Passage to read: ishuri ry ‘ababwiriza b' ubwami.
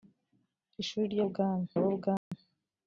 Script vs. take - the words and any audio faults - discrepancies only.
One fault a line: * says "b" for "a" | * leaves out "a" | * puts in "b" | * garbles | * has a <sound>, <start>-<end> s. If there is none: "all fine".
* says "ubwami" for "ababwiriza"
* has a dropout, 2.2-2.3 s